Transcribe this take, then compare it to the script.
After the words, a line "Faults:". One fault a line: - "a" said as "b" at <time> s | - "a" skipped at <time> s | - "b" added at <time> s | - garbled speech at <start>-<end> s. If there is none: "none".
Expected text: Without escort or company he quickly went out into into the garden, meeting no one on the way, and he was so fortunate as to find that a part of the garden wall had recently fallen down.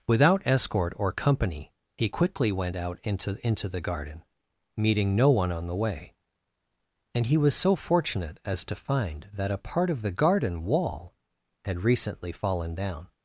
Without escort or company he quickly went out into into the garden, meeting no one on the way, and he was so fortunate as to find that a part of the garden wall had recently fallen down.
Faults:
none